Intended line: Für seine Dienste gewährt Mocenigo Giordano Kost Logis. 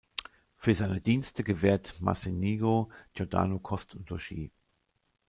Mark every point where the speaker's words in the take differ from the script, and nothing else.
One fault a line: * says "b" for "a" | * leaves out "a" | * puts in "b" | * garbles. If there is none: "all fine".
* puts in "und"